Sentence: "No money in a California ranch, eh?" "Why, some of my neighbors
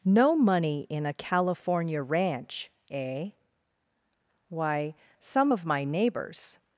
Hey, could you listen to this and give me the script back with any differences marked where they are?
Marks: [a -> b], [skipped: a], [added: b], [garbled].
"No money in a California ranch, eh?" "Why, some of my neighbors